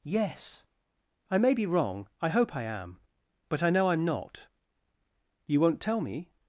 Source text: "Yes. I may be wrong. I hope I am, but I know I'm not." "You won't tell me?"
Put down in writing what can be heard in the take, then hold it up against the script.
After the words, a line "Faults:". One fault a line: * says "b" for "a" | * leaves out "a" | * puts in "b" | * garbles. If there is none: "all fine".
"Yes. I may be wrong. I hope I am, but I know I'm not." "You won't tell me?"
Faults:
all fine